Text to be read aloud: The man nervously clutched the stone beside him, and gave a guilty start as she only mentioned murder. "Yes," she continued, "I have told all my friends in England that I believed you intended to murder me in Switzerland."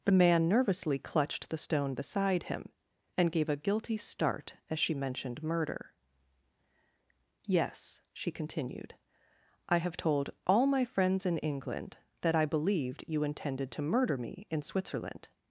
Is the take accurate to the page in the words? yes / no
no